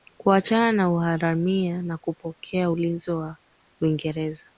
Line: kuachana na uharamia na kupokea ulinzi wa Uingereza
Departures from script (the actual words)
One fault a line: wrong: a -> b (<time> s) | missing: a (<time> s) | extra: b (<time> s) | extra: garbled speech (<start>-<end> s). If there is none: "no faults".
no faults